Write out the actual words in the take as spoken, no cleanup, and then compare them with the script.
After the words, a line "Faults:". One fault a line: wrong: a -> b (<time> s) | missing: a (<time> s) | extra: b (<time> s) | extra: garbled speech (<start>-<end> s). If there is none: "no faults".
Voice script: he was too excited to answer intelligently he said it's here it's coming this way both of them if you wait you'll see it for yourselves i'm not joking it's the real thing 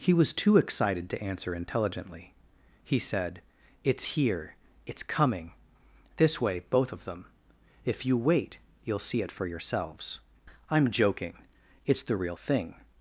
he was too excited to answer intelligently he said it's here it's coming this way both of them if you wait you'll see it for yourselves i'm joking it's the real thing
Faults:
missing: not (10.9 s)